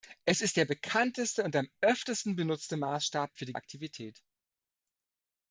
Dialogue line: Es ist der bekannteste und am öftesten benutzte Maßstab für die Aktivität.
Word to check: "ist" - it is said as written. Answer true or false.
true